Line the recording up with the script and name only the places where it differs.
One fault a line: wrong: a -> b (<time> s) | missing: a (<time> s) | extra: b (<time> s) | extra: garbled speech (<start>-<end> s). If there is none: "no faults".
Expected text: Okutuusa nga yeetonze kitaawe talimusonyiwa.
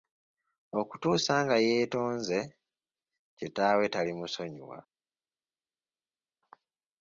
no faults